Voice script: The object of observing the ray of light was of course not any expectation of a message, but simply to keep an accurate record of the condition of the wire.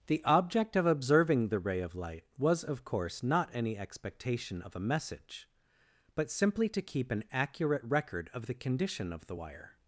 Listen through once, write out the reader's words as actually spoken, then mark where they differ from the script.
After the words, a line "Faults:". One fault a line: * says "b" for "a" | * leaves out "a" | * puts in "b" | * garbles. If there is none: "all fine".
The object of observing the ray of light was of course not any expectation of a message, but simply to keep an accurate record of the condition of the wire.
Faults:
all fine